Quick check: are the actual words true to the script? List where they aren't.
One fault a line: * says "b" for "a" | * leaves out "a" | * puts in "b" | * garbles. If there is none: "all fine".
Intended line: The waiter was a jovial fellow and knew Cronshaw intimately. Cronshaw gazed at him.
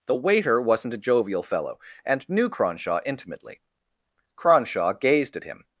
* says "wasn't" for "was"